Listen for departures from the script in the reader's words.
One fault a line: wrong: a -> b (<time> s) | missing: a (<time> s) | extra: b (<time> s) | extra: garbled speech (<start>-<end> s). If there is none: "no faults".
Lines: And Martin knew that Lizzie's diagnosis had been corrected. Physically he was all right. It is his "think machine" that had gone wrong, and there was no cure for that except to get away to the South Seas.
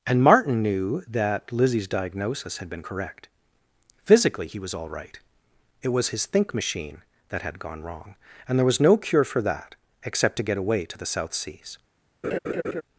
wrong: corrected -> correct (2.8 s)
wrong: is -> was (5.9 s)